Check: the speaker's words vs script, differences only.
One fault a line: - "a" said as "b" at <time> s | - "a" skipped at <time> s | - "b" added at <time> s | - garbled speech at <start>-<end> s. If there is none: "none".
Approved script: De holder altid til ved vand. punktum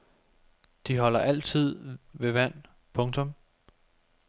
- "til" skipped at 2.0 s